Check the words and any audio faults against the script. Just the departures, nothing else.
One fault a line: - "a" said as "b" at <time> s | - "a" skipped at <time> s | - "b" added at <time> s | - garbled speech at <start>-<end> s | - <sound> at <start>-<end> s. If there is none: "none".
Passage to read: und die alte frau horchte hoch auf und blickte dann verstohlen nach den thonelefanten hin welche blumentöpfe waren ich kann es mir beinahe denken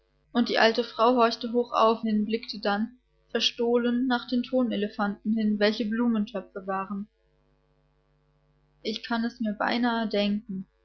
- "und" said as "hin" at 2.0 s